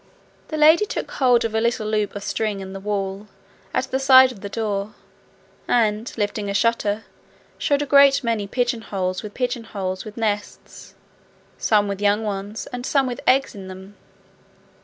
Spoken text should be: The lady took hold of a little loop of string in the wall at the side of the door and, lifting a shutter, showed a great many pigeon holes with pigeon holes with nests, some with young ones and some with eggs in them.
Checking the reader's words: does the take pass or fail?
pass